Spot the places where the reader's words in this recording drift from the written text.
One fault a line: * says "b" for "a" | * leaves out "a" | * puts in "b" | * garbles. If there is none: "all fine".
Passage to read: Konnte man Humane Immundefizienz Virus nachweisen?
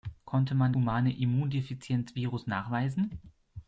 all fine